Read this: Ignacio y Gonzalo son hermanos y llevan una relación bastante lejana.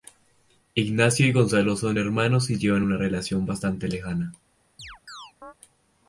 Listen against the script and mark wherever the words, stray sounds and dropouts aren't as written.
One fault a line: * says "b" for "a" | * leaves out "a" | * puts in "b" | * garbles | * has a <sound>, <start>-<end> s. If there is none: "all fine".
* has a chirp, 4.8-5.5 s